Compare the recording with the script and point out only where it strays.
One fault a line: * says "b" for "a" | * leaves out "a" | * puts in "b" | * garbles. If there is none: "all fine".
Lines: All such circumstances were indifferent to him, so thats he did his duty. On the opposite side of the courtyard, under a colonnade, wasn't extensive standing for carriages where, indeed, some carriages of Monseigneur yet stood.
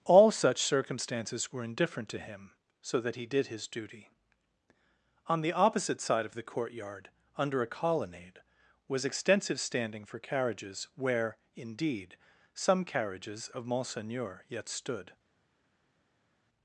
* says "that" for "thats"
* says "was" for "wasn't"